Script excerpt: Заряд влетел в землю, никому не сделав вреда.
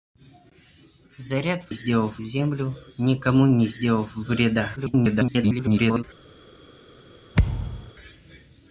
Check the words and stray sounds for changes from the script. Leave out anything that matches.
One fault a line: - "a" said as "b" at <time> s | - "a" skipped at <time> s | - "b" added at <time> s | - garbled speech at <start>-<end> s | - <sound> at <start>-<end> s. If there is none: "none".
- "влетел" said as "сделав" at 1.7 s
- garbled speech at 4.8-6.0 s
- thud at 7.3-7.9 s